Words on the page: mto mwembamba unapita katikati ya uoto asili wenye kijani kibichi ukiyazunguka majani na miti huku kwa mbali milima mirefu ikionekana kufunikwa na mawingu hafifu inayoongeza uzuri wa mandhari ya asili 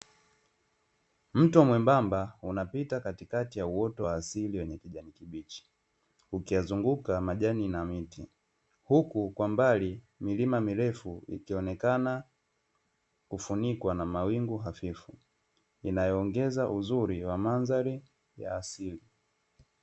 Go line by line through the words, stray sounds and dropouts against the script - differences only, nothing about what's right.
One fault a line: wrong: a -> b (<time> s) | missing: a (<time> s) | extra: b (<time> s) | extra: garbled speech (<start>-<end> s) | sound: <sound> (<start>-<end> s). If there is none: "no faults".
extra: wa (4.0 s)